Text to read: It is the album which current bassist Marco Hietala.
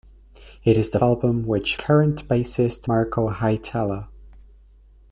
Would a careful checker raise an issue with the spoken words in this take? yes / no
no